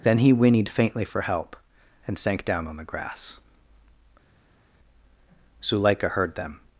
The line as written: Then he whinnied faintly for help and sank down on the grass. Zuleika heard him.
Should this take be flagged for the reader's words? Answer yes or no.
yes